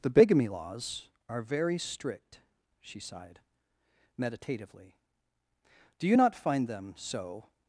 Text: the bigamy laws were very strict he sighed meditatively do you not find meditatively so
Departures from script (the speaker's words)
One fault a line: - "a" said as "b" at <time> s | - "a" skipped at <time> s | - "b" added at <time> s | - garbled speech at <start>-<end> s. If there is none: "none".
- "were" said as "are" at 1.3 s
- "he" said as "she" at 2.8 s
- "meditatively" said as "them" at 6.7 s